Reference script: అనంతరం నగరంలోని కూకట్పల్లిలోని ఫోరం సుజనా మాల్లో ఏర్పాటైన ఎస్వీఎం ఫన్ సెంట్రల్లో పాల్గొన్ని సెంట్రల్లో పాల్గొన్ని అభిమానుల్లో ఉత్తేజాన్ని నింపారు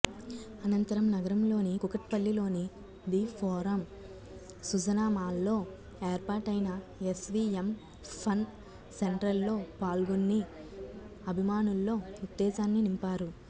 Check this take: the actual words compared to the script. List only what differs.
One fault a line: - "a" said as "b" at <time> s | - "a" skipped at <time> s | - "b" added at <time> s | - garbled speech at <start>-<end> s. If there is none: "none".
- "ది" added at 3.1 s
- "సెంట్రల్లో పాల్గొన్ని" skipped at 10.4 s